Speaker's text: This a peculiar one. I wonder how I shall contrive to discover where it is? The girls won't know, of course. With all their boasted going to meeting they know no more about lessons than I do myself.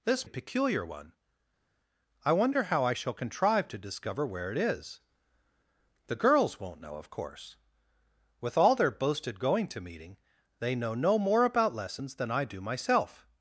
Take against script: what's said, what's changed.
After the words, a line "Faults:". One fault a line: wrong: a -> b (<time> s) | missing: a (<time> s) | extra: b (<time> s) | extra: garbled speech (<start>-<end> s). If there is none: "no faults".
This a peculiar one. I wonder how I shall contrive to discover where it is? The girls won't know, of course. With all their boasted going to meeting they know no more about lessons than I do myself.
Faults:
no faults